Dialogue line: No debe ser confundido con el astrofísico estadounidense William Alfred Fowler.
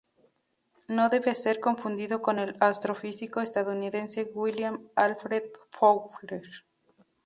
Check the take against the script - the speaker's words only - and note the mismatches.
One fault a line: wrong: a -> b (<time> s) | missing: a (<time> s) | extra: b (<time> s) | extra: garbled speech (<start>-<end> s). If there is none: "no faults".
no faults